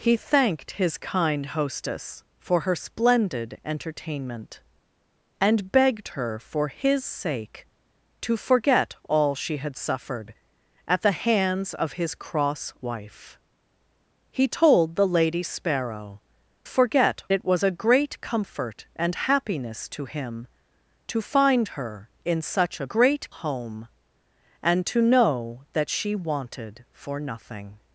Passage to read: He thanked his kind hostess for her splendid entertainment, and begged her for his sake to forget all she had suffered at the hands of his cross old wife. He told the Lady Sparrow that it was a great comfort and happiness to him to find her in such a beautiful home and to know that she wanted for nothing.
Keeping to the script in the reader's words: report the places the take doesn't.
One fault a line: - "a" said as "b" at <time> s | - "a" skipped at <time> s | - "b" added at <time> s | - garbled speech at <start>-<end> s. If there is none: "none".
- "old" skipped at 12.7 s
- "that" said as "forget" at 16.6 s
- "beautiful" said as "great" at 22.9 s